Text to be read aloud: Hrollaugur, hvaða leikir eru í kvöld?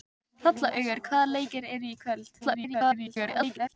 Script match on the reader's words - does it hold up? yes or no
no